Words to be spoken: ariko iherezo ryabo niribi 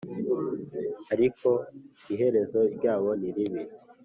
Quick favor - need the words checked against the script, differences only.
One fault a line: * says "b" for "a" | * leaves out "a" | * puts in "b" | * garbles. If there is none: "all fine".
all fine